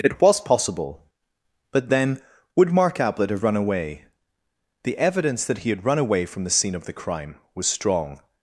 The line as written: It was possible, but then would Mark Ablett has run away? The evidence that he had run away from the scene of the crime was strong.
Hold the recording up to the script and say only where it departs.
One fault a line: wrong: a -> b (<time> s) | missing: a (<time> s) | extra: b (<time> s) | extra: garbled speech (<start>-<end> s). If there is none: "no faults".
wrong: has -> have (3.3 s)